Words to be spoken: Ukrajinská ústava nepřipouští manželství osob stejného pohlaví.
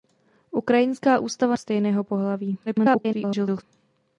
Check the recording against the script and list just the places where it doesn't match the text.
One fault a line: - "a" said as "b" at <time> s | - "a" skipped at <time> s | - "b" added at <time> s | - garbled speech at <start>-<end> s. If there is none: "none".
- "nepřipouští manželství osob" skipped at 1.6 s
- garbled speech at 2.7-3.6 s